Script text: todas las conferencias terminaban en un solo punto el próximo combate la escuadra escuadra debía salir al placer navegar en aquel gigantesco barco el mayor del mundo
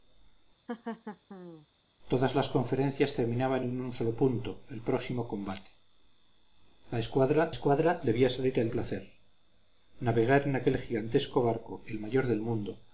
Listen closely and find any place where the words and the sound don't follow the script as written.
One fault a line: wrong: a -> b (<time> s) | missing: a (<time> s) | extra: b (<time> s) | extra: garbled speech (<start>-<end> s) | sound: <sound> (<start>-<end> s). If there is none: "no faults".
sound: laugh (0.7-1.7 s)